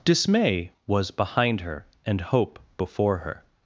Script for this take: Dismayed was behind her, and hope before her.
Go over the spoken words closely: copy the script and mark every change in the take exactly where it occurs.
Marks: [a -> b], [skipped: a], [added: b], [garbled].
[Dismayed -> Dismay] was behind her, and hope before her.